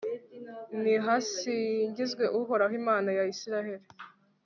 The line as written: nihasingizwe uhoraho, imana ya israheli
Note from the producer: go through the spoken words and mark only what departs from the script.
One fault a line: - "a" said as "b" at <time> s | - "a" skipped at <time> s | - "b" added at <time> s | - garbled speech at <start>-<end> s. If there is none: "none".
none